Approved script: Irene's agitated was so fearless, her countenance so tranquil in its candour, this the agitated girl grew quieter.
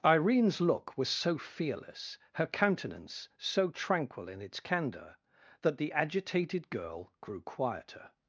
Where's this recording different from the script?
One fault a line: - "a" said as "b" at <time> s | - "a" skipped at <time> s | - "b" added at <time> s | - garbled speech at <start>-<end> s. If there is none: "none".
- "agitated" said as "look" at 0.6 s
- "this" said as "that" at 5.6 s